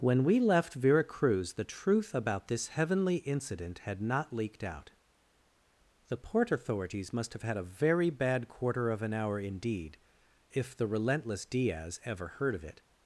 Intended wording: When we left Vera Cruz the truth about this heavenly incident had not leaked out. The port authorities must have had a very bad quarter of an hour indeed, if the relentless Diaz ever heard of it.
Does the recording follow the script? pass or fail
pass